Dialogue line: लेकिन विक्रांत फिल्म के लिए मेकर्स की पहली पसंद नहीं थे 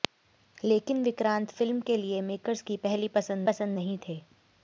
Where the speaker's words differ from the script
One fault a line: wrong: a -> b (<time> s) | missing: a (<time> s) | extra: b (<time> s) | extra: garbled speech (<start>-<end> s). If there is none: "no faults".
extra: पसंद (3.5 s)